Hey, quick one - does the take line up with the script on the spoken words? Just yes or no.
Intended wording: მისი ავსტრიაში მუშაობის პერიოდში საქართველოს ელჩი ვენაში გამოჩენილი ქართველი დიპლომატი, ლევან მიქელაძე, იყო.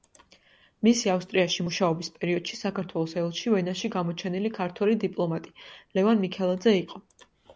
yes